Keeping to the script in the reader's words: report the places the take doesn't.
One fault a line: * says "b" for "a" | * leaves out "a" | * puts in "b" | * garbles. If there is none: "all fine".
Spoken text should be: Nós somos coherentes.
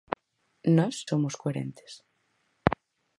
all fine